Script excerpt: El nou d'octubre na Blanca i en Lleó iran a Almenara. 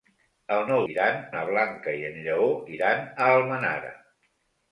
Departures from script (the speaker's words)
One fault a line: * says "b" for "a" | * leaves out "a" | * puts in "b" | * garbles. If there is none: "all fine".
* says "iran" for "d'octubre"